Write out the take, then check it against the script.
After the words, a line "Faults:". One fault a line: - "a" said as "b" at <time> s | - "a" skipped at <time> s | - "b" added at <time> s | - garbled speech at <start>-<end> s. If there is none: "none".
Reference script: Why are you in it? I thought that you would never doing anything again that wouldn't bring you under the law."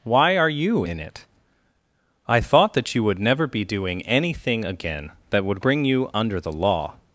Why are you in it? I thought that you would never be doing anything again that would bring you under the law."
Faults:
- "be" added at 3.5 s
- "wouldn't" said as "would" at 5.4 s